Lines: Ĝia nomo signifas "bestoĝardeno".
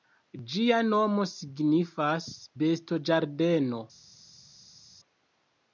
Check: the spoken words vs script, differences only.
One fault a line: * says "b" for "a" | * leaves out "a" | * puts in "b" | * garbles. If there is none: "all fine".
all fine